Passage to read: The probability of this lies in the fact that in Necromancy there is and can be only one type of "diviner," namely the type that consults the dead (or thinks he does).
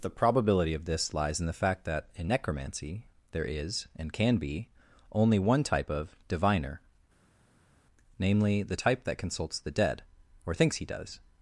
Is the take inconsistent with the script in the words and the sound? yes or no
no